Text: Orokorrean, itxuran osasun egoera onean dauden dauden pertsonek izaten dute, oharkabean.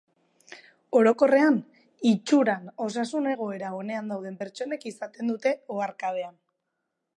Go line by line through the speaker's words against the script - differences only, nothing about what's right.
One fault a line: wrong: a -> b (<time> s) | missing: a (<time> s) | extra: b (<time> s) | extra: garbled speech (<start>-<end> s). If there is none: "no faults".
missing: dauden (4.4 s)